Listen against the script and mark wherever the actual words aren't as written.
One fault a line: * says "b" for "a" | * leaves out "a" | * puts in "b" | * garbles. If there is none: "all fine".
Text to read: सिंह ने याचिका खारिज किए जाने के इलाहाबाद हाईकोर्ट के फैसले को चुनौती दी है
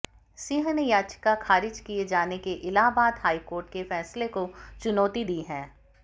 all fine